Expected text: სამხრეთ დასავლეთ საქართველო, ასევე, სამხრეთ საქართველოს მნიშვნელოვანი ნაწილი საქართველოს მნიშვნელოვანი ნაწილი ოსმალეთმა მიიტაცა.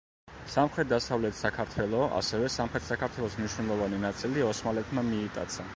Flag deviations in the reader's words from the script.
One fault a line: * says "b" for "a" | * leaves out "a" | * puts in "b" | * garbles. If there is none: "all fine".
* leaves out "საქართველოს მნიშვნელოვანი ნაწილი"